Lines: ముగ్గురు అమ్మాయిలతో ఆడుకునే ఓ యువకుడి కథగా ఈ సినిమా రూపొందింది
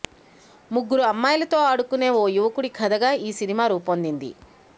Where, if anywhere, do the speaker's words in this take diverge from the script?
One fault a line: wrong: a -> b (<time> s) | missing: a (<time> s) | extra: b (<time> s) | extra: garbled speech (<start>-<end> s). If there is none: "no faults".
no faults